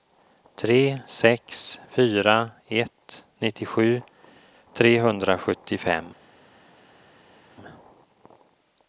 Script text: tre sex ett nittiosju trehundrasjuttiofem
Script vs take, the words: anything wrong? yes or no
yes